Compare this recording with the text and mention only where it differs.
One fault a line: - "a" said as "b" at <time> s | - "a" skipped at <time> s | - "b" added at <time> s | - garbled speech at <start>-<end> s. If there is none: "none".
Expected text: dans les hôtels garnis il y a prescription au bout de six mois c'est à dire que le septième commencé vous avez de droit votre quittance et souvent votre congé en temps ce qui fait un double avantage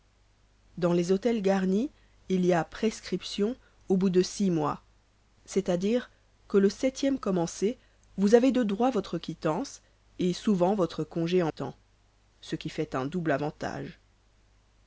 none